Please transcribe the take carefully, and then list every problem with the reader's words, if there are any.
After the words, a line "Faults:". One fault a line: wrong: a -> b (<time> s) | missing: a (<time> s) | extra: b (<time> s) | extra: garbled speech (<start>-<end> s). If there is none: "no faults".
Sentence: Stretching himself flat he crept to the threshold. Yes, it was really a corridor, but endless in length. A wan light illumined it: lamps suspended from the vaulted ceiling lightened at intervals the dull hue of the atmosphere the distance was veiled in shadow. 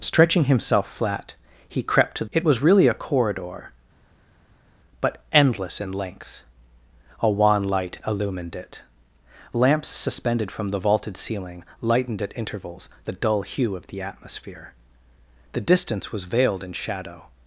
Stretching himself flat he crept to it was really a corridor, but endless in length. A wan light illumined it: lamps suspended from the vaulted ceiling lightened at intervals the dull hue of the atmosphere the distance was veiled in shadow.
Faults:
missing: the threshold Yes (2.2 s)